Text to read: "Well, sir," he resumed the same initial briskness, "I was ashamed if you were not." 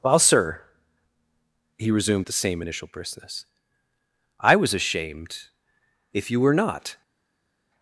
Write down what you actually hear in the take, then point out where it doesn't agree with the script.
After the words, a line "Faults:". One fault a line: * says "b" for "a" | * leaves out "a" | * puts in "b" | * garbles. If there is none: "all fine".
"Well, sir," he resumed the same initial briskness, "I was ashamed if you were not."
Faults:
all fine